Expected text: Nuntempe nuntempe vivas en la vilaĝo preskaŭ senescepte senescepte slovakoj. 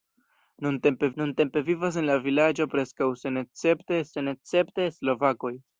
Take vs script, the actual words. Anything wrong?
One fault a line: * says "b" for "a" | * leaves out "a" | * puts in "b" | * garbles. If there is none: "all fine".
all fine